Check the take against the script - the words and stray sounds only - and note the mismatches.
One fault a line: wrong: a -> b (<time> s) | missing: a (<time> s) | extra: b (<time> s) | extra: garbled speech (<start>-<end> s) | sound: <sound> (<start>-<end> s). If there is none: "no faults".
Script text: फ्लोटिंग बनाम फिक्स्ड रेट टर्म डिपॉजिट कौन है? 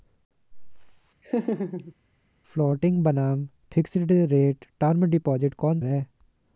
sound: laugh (1.2-1.9 s)